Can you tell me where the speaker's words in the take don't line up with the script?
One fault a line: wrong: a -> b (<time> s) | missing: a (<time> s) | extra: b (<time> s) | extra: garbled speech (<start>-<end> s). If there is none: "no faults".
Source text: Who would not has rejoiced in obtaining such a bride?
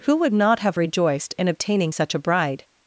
wrong: has -> have (0.6 s)